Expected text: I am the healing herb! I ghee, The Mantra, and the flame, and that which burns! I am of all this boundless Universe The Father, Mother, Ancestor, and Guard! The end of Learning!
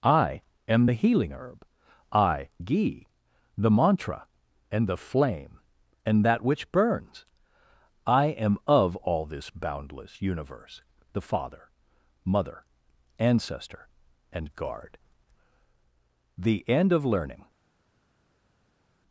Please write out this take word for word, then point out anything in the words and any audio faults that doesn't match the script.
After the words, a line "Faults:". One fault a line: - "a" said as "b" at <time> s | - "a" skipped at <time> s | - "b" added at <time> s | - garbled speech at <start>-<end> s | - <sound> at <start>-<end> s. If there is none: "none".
I am the healing herb! I ghee, The Mantra, and the flame, and that which burns! I am of all this boundless Universe The Father, Mother, Ancestor, and Guard! The end of Learning!
Faults:
none